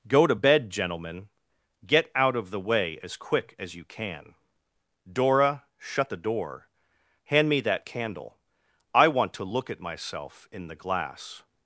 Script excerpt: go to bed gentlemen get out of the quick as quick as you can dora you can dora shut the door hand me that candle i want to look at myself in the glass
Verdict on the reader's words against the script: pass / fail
fail